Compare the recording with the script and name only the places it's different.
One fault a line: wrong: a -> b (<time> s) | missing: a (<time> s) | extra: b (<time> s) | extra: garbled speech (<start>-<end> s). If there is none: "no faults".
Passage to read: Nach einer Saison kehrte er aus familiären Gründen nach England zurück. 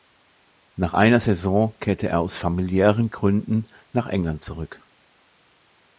no faults